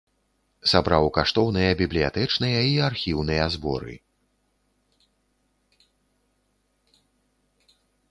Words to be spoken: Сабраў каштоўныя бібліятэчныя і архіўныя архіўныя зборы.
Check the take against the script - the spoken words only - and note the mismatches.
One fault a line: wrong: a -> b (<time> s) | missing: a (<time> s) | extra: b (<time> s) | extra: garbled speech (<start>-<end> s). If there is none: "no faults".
missing: архіўныя (3.5 s)